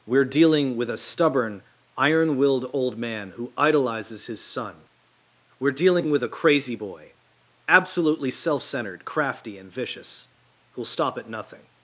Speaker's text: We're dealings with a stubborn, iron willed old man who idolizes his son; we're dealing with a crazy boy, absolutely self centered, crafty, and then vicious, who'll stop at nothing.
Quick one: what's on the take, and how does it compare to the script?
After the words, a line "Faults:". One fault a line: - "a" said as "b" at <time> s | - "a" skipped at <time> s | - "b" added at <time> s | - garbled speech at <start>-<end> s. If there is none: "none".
We're dealing with a stubborn, iron willed old man who idolizes his son; we're dealing with a crazy boy, absolutely self centered, crafty, and vicious, who'll stop at nothing.
Faults:
- "dealings" said as "dealing" at 0.2 s
- "then" skipped at 9.7 s